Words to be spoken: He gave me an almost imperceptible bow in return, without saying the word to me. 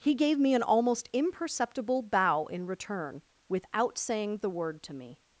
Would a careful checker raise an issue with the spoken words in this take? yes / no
no